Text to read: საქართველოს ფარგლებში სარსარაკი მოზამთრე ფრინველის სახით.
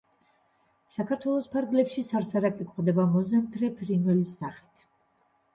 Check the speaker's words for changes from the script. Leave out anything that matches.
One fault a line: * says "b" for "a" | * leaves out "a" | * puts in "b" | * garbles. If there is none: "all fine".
* puts in "გვხვდება"